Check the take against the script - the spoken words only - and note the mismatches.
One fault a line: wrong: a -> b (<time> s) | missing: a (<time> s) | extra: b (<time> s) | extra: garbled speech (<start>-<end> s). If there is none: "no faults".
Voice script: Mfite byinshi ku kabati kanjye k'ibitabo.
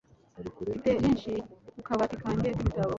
no faults